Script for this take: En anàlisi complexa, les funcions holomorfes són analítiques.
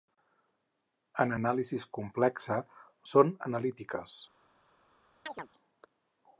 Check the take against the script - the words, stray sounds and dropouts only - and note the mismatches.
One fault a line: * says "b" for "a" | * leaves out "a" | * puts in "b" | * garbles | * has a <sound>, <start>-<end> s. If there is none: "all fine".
* leaves out "les funcions holomorfes"
* has a chirp, 5.3-5.5 s